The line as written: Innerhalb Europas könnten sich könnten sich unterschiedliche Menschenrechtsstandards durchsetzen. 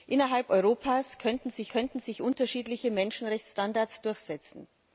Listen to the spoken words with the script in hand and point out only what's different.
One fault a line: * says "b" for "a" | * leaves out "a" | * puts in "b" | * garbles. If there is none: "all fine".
all fine